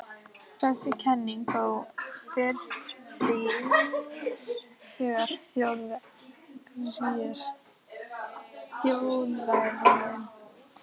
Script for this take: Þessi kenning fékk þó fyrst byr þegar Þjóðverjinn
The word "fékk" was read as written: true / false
false